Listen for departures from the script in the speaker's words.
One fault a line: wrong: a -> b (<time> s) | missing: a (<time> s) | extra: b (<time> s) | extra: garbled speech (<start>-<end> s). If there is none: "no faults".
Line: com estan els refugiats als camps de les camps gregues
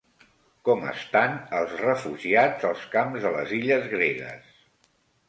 wrong: camps -> illes (3.6 s)